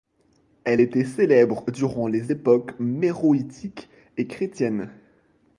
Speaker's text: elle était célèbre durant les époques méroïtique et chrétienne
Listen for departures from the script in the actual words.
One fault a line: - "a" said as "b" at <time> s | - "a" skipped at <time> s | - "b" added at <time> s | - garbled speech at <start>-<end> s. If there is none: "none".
none